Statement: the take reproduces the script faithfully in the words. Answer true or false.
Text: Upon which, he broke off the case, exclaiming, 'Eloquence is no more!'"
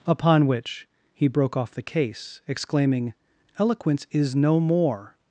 true